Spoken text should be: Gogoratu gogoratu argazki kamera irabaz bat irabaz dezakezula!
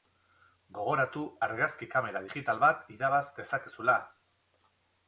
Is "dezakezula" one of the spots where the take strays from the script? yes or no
no